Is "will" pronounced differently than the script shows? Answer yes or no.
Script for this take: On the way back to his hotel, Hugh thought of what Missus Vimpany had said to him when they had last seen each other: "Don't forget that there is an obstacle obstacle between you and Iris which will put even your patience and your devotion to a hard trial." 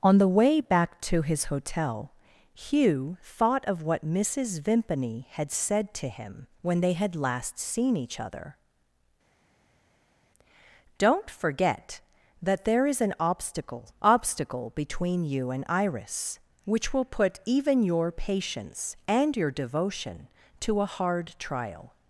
no